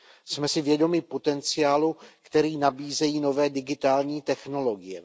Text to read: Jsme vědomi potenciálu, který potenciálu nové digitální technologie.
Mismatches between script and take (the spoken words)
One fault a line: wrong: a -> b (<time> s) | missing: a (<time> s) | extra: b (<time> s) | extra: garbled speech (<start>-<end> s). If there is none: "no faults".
extra: si (0.5 s)
wrong: potenciálu -> nabízejí (2.6 s)